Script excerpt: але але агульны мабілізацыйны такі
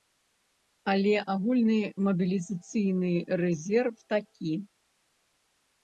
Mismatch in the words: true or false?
true